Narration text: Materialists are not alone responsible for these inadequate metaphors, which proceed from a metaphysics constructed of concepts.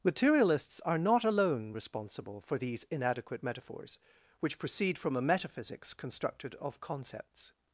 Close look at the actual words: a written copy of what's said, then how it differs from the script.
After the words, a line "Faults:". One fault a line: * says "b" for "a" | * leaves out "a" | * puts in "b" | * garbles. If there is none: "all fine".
Materialists are not alone responsible for these inadequate metaphors, which proceed from a metaphysics constructed of concepts.
Faults:
all fine